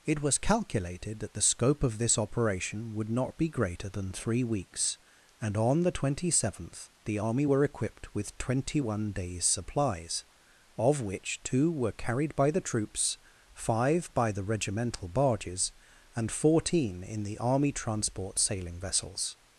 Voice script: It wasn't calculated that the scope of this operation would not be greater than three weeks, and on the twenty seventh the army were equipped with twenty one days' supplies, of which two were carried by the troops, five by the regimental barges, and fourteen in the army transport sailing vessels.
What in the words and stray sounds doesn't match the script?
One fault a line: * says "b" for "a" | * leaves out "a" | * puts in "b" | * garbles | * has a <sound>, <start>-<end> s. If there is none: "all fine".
* says "was" for "wasn't"